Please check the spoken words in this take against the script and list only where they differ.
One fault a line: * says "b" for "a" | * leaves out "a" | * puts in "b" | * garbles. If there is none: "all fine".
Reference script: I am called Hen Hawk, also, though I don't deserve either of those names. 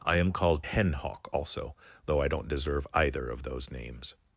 all fine